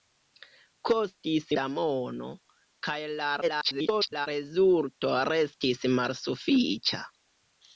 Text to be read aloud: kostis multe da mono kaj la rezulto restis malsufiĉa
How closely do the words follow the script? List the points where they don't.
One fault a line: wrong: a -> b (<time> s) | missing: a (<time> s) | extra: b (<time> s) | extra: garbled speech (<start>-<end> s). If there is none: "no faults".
missing: multe (1.5 s)
extra: garbled speech (3.4-4.3 s)